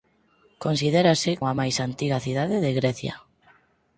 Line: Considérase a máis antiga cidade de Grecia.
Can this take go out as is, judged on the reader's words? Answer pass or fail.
pass